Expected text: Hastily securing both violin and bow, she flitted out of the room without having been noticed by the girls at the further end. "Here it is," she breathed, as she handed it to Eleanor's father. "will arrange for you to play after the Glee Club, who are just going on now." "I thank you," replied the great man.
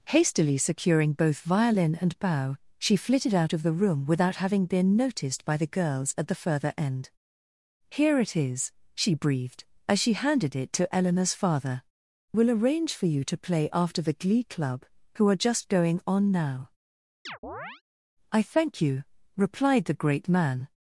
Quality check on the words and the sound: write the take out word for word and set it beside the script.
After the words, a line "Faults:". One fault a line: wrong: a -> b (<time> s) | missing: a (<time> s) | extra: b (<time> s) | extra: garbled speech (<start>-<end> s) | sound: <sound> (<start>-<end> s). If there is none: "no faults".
Hastily securing both violin and bow, she flitted out of the room without having been noticed by the girls at the further end. "Here it is," she breathed, as she handed it to Eleanor's father. "will arrange for you to play after the Glee Club, who are just going on now." "I thank you," replied the great man.
Faults:
sound: chirp (17.3-17.8 s)